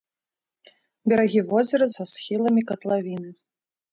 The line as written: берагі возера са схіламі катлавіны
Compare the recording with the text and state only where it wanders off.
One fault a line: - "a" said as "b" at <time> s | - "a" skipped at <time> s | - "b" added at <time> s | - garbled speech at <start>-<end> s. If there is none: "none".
none